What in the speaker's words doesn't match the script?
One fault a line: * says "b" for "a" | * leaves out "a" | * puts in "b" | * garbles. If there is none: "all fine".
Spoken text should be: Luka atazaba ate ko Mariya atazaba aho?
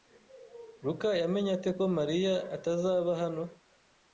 * says "yamenye" for "atazaba"
* says "hano" for "aho"